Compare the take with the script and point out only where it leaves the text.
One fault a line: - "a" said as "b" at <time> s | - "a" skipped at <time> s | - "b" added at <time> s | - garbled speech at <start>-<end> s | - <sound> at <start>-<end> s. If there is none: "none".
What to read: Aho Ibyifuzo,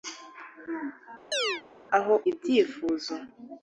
- chirp at 1.3-1.6 s